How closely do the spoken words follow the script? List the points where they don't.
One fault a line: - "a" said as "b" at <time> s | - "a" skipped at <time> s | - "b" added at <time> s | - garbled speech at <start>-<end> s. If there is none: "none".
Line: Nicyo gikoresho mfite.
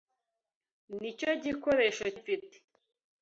none